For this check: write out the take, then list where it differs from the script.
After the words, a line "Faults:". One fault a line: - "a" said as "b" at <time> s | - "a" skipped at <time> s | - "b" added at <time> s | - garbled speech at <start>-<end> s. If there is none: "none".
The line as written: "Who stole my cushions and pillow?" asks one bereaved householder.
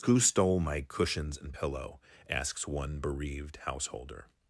"Who stole my cushions and pillow?" asks one bereaved householder.
Faults:
none